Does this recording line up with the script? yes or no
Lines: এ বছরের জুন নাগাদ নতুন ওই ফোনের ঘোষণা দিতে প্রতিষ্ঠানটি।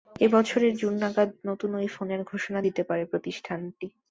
no